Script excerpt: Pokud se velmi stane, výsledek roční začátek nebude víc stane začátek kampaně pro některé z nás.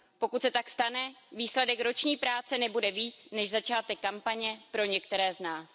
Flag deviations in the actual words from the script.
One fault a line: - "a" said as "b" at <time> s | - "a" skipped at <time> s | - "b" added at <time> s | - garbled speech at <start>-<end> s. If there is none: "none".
- "velmi" said as "tak" at 0.5 s
- "začátek" said as "práce" at 2.2 s
- "stane" said as "než" at 3.3 s